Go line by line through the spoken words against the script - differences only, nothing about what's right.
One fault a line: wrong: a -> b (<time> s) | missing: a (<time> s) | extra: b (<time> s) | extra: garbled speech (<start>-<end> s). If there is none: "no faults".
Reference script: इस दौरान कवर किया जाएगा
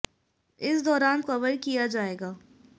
no faults